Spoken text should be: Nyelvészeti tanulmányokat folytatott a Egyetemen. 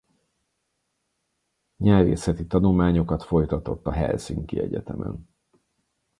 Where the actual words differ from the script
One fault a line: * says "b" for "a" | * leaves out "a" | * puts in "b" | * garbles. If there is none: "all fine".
* puts in "Helsinki"